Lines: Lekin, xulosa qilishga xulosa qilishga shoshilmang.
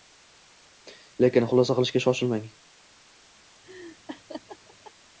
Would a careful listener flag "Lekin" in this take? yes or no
no